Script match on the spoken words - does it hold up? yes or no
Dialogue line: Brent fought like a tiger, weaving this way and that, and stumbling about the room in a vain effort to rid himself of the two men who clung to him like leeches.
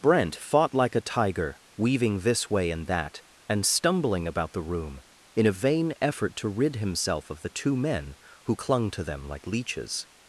no